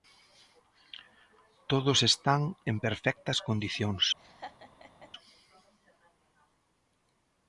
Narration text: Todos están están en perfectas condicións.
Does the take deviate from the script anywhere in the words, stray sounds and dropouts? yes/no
yes